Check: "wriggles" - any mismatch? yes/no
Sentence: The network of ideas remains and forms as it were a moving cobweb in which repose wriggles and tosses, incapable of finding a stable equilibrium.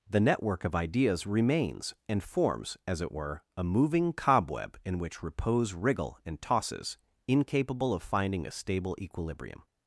yes